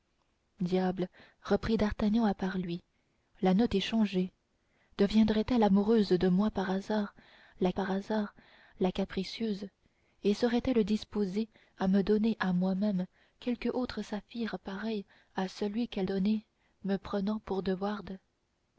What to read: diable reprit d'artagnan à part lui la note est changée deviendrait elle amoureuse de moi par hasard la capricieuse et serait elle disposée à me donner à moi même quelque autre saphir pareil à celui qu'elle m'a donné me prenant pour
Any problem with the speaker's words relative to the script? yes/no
yes